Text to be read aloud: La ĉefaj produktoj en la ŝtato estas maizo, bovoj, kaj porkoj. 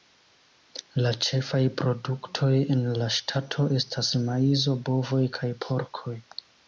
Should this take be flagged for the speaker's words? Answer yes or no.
no